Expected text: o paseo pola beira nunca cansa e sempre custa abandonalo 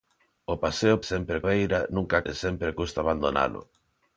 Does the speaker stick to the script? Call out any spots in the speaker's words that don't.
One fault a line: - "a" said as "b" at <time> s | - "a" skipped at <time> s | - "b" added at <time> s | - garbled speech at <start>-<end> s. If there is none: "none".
- "pola" said as "sempre" at 1.1 s
- "cansa" skipped at 2.2 s